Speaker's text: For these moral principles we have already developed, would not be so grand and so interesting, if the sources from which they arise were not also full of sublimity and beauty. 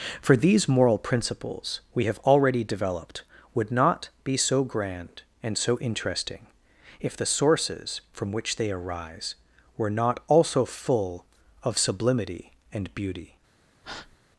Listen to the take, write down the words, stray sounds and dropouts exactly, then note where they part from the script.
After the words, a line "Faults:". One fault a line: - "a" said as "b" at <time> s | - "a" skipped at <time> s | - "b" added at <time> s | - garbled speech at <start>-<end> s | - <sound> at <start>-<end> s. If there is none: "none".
For these moral principles we have already developed, would not be so grand and so interesting, if the sources from which they arise were not also full of sublimity and beauty.
Faults:
- breath at 13.8-14.2 s